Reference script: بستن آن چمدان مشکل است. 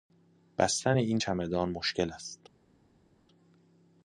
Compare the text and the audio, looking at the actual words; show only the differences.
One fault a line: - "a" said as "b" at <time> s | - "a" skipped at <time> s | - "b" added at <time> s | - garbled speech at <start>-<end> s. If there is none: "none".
- "آن" said as "این" at 0.9 s